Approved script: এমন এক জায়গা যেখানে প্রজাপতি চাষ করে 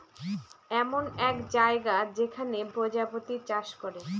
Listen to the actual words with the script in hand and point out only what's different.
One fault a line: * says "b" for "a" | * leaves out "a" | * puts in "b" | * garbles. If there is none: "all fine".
all fine